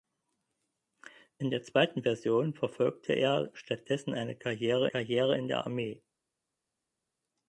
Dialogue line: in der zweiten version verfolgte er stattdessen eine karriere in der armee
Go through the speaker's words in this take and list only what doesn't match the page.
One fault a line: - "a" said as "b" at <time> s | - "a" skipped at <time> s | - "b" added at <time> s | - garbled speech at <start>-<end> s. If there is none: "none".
- "karriere" added at 4.9 s